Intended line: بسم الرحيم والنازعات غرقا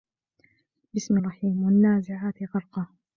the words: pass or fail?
pass